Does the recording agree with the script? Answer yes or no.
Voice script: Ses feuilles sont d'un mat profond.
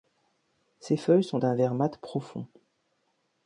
no